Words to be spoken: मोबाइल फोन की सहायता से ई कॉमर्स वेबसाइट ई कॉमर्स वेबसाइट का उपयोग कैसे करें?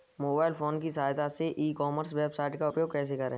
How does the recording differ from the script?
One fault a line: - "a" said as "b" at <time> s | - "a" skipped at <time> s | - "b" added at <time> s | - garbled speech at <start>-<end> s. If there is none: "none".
- "ई कॉमर्स वेबसाइट" skipped at 2.6 s